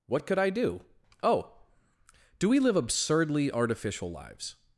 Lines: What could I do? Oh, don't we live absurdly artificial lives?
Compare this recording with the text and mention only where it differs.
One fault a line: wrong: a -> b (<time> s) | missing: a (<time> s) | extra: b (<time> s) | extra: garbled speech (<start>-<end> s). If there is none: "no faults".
wrong: don't -> do (2.4 s)